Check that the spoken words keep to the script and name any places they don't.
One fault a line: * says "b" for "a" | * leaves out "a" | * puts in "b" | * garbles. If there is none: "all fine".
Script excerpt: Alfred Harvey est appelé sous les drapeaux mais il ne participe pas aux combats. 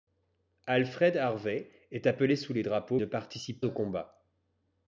* leaves out "mais il"
* leaves out "pas"